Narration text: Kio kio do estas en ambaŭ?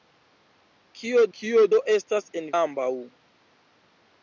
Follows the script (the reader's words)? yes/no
yes